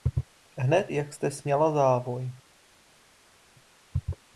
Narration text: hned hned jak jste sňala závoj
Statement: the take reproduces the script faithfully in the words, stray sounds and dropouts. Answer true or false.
false